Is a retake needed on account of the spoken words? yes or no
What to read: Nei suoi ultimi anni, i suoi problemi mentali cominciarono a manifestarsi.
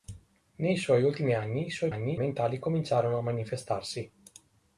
yes